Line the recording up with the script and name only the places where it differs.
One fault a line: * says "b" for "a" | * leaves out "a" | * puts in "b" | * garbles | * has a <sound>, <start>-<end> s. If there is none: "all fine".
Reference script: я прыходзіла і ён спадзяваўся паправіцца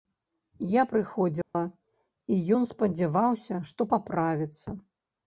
* has a dropout, 1.4-1.5 s
* puts in "што"